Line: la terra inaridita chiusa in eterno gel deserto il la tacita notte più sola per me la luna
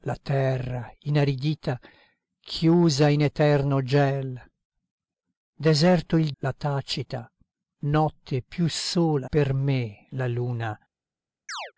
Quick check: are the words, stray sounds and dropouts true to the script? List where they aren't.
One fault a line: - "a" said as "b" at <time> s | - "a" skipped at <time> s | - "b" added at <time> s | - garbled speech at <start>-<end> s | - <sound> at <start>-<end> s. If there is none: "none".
- chirp at 11.5-11.7 s